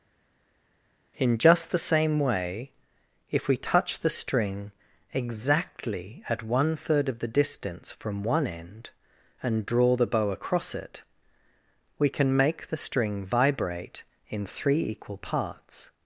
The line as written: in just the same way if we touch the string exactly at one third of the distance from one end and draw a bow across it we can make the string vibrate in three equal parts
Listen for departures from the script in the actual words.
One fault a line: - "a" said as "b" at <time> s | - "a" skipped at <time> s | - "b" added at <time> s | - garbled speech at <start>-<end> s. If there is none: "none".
- "a" said as "the" at 9.9 s